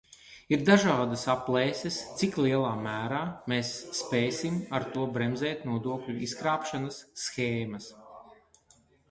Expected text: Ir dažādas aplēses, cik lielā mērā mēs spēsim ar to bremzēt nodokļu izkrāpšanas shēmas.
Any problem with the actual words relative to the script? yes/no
no